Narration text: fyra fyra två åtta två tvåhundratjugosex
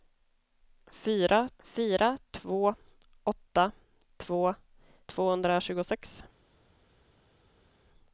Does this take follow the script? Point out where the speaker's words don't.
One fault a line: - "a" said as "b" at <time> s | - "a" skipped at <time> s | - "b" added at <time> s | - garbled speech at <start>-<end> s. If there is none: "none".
none